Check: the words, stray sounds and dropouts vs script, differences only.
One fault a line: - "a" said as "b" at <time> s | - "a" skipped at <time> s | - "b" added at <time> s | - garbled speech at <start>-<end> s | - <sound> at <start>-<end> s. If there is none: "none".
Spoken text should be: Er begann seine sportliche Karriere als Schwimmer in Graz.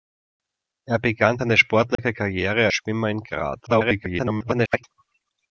- dropout at 1.9-2.0 s
- "als" skipped at 2.7 s
- garbled speech at 3.7-4.8 s